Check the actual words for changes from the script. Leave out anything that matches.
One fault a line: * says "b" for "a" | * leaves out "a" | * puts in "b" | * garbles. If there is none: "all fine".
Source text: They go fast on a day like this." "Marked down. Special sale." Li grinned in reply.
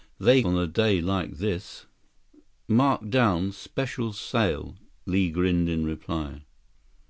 * leaves out "go fast"